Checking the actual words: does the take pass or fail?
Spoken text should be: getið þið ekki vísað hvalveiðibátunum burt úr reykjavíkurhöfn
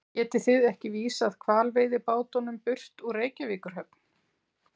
pass